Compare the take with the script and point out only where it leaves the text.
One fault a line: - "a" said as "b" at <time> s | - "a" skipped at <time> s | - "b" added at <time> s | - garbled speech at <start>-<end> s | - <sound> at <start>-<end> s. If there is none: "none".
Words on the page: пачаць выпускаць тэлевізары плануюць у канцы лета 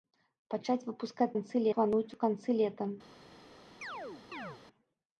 - "тэлевізары" said as "канцы" at 1.3 s
- chirp at 3.8-4.6 s